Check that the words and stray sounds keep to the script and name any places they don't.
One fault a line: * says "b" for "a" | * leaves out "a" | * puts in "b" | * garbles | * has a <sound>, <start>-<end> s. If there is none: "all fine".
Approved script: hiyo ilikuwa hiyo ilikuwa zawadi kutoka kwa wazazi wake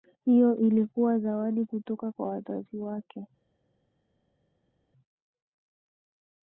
* leaves out "hiyo ilikuwa"